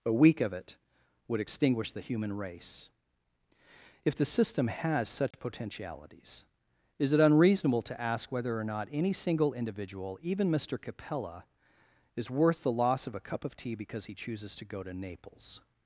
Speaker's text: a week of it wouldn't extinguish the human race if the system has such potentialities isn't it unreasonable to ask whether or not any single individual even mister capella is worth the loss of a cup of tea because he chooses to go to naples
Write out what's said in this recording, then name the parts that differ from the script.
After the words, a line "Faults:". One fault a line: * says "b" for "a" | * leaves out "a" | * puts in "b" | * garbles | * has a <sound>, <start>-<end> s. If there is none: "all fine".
a week of it would extinguish the human race if the system has such potentialities is it unreasonable to ask whether or not any single individual even mister capella is worth the loss of a cup of tea because he chooses to go to naples
Faults:
* says "would" for "wouldn't"
* has a dropout, 5.3-5.3 s
* says "is" for "isn't"